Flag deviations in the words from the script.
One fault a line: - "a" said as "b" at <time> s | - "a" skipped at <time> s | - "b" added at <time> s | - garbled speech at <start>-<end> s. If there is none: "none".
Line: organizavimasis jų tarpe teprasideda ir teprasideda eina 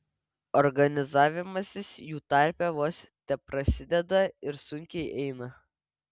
- "vos" added at 2.8 s
- "teprasideda" said as "sunkiai" at 4.7 s